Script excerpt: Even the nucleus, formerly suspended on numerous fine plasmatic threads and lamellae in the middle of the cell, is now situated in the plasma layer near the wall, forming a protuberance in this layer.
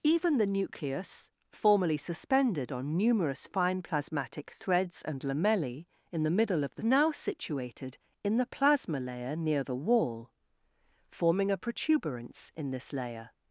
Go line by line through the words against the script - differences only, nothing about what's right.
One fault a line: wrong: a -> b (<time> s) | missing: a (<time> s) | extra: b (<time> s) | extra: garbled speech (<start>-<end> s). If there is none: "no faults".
missing: cell is (6.8 s)